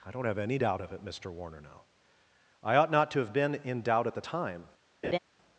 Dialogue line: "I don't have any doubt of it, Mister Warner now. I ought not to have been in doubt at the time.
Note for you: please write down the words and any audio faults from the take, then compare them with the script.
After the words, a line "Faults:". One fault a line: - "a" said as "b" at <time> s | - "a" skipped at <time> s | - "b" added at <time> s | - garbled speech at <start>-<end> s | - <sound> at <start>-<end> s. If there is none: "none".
"I don't have any doubt of it, Mister Warner now. I ought not to have been in doubt at the time.
Faults:
- laugh at 5.0-5.2 s